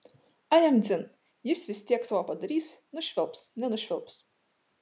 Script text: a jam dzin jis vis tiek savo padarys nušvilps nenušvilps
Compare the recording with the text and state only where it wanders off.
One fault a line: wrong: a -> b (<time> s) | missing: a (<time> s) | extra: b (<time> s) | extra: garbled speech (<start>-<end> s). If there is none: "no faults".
no faults